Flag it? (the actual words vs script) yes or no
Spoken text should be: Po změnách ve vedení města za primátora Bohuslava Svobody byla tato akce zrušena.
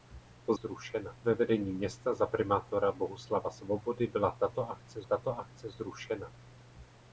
yes